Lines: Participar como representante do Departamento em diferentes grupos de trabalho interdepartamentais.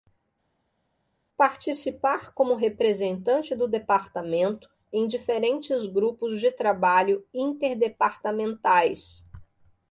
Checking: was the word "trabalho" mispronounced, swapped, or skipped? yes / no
no